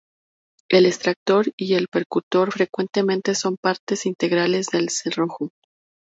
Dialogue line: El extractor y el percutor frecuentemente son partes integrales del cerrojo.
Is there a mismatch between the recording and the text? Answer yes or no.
no